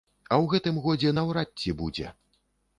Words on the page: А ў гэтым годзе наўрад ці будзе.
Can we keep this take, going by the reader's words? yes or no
yes